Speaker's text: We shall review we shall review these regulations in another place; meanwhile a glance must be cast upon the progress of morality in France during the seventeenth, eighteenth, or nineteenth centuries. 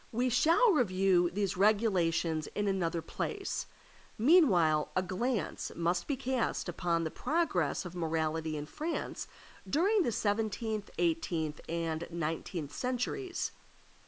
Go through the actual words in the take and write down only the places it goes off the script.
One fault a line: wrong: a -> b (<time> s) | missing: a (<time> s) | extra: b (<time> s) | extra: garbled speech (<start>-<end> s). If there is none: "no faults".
missing: we shall review (1.3 s)
wrong: or -> and (11.7 s)